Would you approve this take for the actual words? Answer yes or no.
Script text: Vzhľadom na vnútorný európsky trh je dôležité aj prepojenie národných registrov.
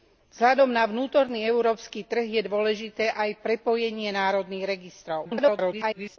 no